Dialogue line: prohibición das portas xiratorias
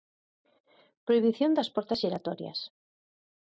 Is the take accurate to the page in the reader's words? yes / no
yes